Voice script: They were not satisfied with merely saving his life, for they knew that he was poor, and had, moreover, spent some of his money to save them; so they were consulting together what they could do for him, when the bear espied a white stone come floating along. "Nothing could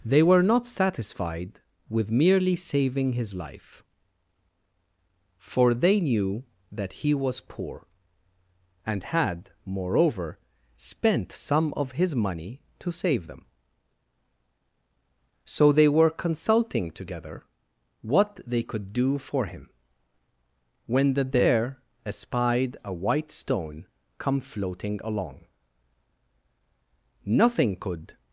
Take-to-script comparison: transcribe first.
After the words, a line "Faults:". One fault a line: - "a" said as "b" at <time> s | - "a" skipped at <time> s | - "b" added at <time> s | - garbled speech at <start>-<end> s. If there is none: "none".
They were not satisfied with merely saving his life, for they knew that he was poor, and had, moreover, spent some of his money to save them; so they were consulting together what they could do for him, when the bear espied a white stone come floating along. "Nothing could
Faults:
none